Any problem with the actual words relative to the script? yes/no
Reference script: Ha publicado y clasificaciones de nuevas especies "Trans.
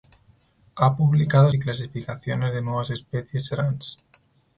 no